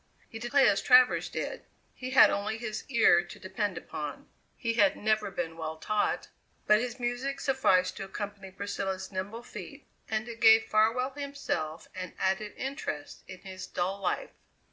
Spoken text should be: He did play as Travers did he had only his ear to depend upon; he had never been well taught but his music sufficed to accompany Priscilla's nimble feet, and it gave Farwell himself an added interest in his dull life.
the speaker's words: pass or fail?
pass